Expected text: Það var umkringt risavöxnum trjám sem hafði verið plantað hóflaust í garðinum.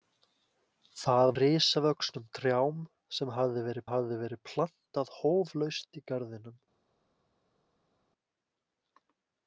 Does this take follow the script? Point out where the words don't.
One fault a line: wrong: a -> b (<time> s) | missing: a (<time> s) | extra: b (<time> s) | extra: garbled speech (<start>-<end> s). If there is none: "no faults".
missing: var umkringt (1.3 s)
extra: hafði verið (3.9 s)